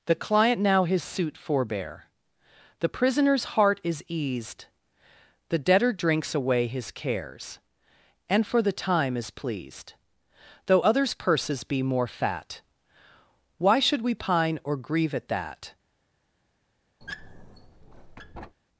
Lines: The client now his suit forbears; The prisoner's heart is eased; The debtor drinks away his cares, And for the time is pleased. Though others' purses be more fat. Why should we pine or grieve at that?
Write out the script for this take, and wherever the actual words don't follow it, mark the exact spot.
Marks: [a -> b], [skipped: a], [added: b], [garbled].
The client now his suit [forbears; -> forbear] The prisoner's heart is eased; The debtor drinks away his cares, And for the time is pleased. Though others' purses be more fat. Why should we pine or grieve at that?